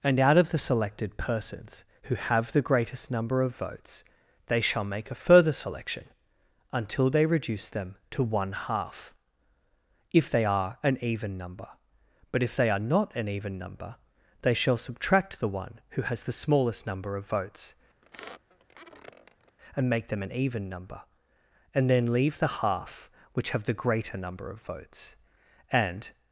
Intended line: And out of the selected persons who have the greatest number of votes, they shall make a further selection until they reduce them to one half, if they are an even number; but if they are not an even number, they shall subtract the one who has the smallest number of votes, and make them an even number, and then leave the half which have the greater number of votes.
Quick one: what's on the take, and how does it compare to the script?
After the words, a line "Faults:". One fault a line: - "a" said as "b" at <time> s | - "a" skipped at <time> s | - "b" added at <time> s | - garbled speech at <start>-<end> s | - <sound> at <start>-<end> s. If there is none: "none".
And out of the selected persons who have the greatest number of votes, they shall make a further selection until they reduce them to one half, if they are an even number; but if they are not an even number, they shall subtract the one who has the smallest number of votes, and make them an even number, and then leave the half which have the greater number of votes. And
Faults:
- squeak at 18.0-19.6 s
- "And" added at 25.7 s